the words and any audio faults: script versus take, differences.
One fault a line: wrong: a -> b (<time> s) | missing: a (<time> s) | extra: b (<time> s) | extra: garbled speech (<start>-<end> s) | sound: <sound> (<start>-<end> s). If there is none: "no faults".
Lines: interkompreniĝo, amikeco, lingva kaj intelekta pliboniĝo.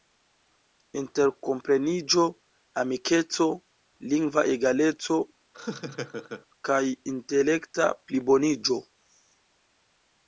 extra: egaleco (4.5 s)
sound: laugh (5.5-6.5 s)